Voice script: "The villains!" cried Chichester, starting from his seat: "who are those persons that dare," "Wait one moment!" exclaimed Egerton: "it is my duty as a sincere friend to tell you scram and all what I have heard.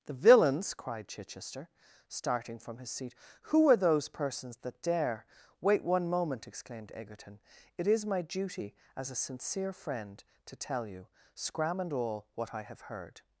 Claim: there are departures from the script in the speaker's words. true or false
false